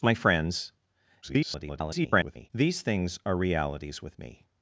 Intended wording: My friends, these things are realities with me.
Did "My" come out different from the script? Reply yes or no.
no